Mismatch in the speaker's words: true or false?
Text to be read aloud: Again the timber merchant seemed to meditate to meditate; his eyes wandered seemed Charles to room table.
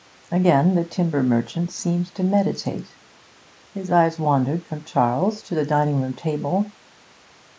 true